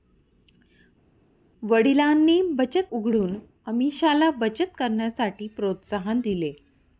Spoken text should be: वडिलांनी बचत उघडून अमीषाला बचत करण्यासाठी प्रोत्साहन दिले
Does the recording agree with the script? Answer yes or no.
yes